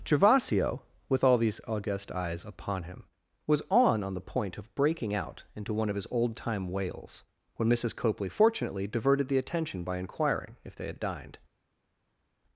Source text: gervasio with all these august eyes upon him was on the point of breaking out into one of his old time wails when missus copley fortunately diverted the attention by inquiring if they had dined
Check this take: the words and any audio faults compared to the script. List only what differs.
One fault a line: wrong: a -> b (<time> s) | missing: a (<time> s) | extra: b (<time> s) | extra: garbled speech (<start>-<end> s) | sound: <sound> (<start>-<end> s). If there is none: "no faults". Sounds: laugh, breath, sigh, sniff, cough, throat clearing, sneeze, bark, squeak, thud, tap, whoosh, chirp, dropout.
extra: on (4.0 s)